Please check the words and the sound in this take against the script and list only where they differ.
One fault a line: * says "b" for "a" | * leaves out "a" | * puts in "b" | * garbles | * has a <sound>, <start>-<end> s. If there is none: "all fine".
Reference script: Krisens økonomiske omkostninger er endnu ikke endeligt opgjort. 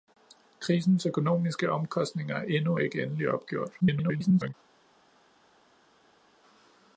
* garbles